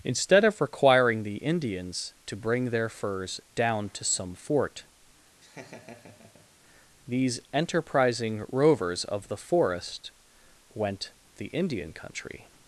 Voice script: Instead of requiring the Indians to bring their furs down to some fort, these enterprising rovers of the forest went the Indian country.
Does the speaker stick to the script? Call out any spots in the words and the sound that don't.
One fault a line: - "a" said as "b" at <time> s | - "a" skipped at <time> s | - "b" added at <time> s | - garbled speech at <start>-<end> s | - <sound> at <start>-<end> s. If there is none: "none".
- laugh at 5.4-6.5 s